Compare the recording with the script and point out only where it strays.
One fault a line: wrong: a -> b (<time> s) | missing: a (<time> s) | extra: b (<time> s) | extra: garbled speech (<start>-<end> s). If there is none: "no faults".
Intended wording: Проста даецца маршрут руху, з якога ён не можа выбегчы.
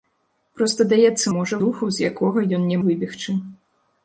wrong: маршрут -> можа (1.3 s)
missing: можа (2.8 s)